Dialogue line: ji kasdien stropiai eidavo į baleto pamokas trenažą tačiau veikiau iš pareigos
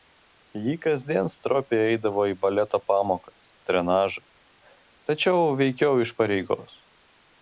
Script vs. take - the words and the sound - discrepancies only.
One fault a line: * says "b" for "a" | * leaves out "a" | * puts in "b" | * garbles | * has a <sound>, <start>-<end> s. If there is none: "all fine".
all fine